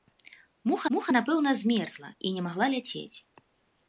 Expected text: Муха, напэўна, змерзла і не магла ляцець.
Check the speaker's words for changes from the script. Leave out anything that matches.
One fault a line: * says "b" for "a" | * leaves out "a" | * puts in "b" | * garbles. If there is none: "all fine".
* puts in "муха"